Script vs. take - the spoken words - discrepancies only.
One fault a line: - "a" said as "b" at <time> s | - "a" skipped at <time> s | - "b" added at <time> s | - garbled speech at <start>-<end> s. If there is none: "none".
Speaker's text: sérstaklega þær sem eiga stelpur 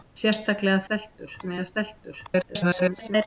- "þær" said as "stelpur" at 0.9 s
- garbled speech at 2.3-3.3 s